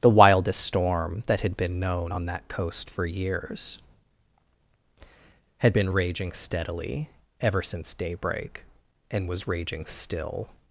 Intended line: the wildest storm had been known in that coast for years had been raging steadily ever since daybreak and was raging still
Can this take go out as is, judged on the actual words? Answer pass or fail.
fail